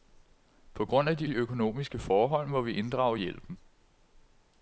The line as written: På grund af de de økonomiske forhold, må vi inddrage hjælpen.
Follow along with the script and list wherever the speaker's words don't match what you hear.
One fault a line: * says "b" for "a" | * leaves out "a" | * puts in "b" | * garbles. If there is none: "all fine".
all fine